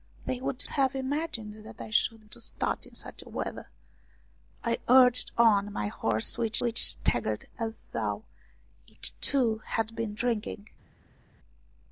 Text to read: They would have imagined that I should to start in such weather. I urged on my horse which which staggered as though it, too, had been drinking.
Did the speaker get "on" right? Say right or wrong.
right